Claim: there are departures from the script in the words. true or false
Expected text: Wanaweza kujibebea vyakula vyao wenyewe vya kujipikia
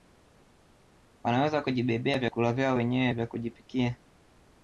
false